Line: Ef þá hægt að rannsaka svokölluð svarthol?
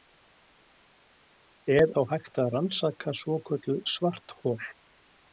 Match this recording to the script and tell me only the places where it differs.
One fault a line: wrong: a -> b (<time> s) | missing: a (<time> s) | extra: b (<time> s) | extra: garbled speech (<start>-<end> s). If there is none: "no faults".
no faults